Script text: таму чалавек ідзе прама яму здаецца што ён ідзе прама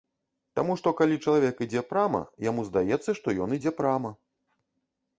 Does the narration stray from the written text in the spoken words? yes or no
yes